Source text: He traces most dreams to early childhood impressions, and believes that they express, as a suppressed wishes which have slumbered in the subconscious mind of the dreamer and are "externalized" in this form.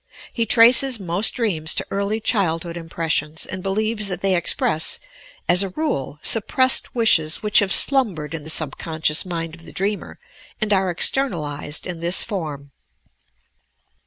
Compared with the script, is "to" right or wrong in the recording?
right